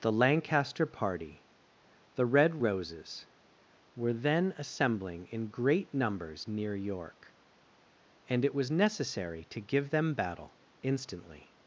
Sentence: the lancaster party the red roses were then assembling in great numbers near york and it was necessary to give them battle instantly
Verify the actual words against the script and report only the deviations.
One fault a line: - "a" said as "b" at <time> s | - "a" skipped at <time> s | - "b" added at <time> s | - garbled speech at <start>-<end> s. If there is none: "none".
none